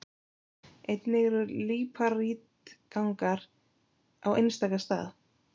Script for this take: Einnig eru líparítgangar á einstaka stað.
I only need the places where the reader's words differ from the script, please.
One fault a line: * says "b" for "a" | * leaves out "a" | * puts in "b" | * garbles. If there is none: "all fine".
all fine